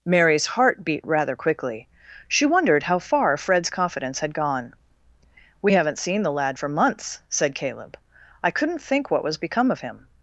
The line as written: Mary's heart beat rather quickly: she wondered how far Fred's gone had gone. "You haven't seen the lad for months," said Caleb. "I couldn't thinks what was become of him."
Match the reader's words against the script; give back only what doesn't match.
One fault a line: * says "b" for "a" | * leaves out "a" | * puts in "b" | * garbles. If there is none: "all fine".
* says "confidence" for "gone"
* says "We" for "You"
* says "think" for "thinks"